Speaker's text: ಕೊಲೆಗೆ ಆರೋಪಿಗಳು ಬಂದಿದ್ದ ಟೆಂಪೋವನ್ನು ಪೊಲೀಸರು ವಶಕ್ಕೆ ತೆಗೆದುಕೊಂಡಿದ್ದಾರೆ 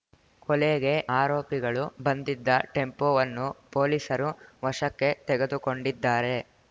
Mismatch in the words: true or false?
false